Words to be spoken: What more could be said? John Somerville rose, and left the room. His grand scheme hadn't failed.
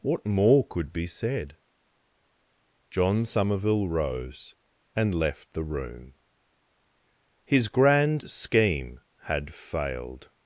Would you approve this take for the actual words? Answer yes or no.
no